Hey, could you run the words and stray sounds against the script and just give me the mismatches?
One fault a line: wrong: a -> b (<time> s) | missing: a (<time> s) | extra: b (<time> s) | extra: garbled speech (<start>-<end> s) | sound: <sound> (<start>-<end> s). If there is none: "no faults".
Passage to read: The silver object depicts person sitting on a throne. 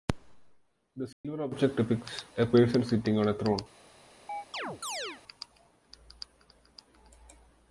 sound: dropout (1.1-1.2 s)
extra: a (2.4 s)
sound: chirp (4.3-5.2 s)